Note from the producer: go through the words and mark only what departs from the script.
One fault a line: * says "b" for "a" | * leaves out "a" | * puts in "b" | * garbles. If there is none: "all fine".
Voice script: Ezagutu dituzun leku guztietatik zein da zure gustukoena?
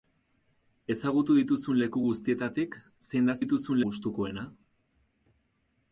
* says "dituzun" for "zure"